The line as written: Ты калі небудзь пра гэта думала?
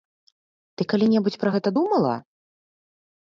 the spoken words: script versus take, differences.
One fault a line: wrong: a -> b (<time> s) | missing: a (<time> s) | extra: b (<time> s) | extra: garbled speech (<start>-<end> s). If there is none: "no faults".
no faults